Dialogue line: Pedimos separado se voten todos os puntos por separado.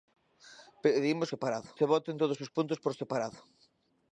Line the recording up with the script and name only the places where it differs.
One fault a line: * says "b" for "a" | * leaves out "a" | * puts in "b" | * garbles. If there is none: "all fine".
all fine